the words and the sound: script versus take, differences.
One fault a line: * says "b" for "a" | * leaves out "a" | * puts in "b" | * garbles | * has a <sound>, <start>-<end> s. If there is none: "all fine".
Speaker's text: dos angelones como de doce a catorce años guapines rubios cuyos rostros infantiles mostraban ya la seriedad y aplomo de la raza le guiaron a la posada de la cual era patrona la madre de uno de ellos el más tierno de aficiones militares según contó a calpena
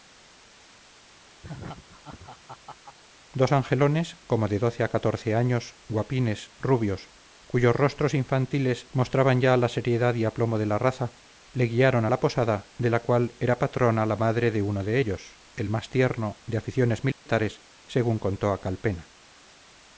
* has a laugh, 1.4-3.0 s
* has a dropout, 17.1-17.3 s